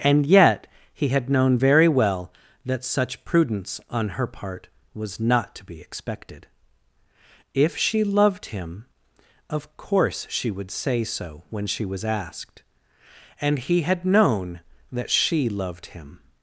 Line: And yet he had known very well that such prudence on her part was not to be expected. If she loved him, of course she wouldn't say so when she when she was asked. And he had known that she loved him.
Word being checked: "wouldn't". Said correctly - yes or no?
no